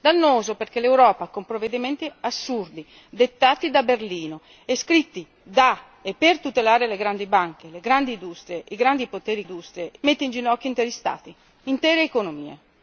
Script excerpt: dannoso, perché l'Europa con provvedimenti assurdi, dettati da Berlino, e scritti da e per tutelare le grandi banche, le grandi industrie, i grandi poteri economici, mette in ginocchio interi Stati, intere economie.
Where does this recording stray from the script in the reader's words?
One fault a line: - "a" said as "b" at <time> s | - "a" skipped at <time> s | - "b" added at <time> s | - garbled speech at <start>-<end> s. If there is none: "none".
- "economici" said as "industrie" at 9.4 s